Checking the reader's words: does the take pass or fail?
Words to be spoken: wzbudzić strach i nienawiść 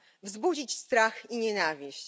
pass